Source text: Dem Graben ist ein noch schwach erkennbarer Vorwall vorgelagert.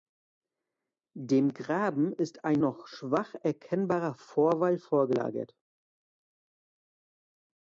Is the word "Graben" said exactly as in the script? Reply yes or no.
yes